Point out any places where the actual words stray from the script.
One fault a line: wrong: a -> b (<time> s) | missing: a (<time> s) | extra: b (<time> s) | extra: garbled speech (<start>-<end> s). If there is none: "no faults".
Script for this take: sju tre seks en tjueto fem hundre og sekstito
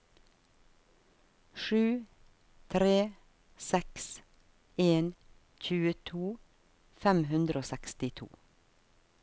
no faults